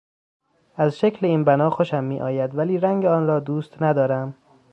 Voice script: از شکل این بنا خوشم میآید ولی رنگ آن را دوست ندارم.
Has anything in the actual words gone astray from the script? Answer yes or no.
no